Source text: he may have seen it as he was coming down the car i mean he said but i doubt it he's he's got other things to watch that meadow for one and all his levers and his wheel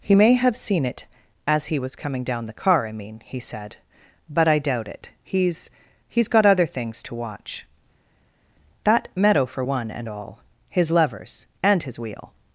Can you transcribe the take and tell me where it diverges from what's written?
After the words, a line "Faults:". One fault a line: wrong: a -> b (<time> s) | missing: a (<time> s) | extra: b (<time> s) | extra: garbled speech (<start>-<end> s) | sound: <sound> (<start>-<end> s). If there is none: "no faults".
he may have seen it as he was coming down the car i mean he said but i doubt it he's he's got other things to watch that meadow for one and all his levers and his wheel
Faults:
no faults